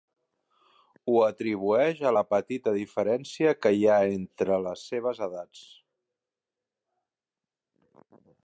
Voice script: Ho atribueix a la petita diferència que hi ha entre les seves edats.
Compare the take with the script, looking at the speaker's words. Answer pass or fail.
pass